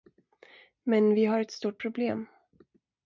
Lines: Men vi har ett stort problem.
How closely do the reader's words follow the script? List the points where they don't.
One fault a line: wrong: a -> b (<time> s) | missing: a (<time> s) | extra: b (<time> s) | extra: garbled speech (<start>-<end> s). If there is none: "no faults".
no faults